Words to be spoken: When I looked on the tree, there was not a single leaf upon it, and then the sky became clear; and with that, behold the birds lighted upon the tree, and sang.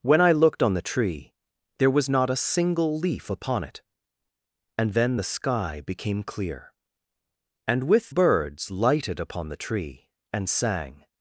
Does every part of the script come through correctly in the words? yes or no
no